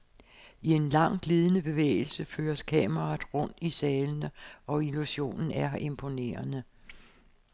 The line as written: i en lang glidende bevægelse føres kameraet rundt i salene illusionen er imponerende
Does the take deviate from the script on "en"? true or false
false